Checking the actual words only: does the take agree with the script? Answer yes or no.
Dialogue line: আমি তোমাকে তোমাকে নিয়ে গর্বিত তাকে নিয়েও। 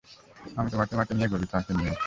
yes